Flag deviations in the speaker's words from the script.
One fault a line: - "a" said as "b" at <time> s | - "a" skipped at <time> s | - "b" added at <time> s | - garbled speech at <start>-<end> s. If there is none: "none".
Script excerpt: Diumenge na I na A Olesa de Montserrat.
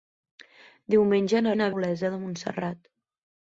none